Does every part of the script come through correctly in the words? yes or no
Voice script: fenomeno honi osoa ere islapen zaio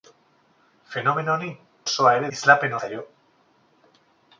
yes